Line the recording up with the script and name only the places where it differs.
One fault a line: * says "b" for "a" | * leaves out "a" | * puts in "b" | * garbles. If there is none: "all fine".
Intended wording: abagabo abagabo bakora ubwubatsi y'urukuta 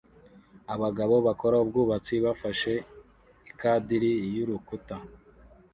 * leaves out "abagabo"
* puts in "bafashe ikadiri"